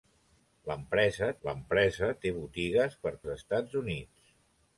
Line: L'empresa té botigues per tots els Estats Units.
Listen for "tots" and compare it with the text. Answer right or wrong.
wrong